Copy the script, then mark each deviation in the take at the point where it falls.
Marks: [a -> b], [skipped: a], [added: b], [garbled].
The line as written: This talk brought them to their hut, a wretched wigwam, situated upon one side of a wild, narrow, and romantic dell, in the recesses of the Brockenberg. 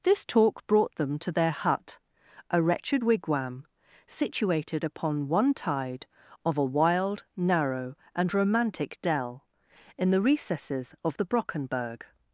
This talk brought them to their hut, a wretched wigwam, situated upon one [side -> tide] of a wild, narrow, and romantic dell, in the recesses of the Brockenberg.